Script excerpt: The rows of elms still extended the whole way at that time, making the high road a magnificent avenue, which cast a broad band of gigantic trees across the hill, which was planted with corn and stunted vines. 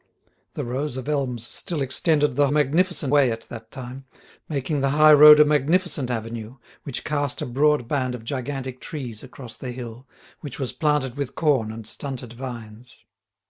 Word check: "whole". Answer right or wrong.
wrong